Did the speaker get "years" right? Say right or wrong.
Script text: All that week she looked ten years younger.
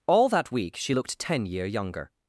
wrong